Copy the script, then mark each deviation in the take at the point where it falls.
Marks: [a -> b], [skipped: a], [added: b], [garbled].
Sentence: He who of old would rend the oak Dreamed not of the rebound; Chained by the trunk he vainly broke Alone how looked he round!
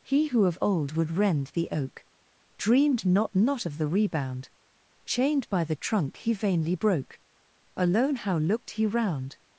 He who of old would rend the oak Dreamed not [added: not] of the rebound; Chained by the trunk he vainly broke Alone how looked he round!